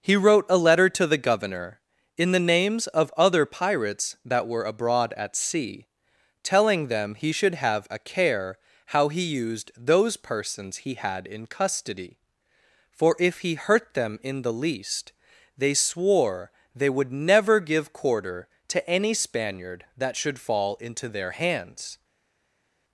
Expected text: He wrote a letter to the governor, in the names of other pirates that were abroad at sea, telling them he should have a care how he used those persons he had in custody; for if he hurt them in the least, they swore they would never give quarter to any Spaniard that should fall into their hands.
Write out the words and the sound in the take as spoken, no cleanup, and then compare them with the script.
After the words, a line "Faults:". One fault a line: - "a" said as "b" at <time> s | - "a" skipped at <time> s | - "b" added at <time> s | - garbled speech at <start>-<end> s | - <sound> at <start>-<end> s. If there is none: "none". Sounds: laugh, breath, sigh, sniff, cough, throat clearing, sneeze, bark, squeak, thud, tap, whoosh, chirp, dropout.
He wrote a letter to the governor, in the names of other pirates that were abroad at sea, telling them he should have a care how he used those persons he had in custody; for if he hurt them in the least, they swore they would never give quarter to any Spaniard that should fall into their hands.
Faults:
none